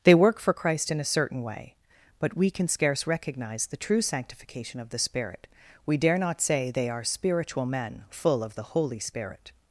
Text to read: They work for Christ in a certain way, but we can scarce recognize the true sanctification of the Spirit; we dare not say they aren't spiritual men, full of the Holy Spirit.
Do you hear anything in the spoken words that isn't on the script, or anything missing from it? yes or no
yes